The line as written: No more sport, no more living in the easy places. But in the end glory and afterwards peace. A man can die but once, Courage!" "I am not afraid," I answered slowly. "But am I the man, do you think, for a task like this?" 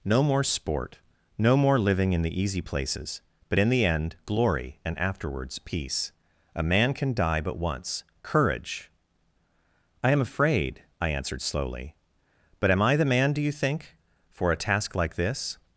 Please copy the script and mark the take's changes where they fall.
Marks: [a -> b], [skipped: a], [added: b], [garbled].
No more sport, no more living in the easy places. But in the end glory and afterwards peace. A man can die but once, Courage!" "I am [skipped: not] afraid," I answered slowly. "But am I the man, do you think, for a task like this?"